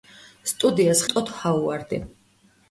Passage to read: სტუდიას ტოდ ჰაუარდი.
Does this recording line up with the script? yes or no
yes